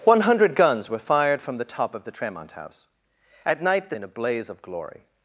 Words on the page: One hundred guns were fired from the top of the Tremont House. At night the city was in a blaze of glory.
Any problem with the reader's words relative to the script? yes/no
yes